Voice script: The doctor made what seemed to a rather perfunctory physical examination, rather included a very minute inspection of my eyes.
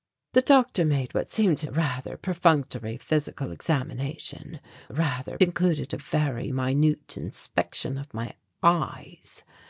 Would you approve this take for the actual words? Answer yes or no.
yes